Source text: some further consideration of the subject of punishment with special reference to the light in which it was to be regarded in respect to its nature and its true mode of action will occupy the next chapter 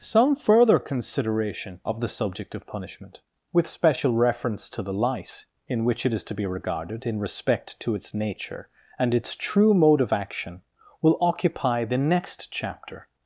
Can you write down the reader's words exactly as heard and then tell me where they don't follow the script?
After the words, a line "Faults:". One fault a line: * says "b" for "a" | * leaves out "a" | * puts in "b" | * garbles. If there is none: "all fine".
some further consideration of the subject of punishment with special reference to the light in which it is to be regarded in respect to its nature and its true mode of action will occupy the next chapter
Faults:
* says "is" for "was"